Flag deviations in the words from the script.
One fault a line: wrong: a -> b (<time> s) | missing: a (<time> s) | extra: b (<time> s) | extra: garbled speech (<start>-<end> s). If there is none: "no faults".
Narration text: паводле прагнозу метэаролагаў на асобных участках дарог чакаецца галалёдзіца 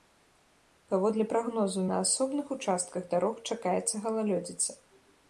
missing: метэаролагаў (1.8 s)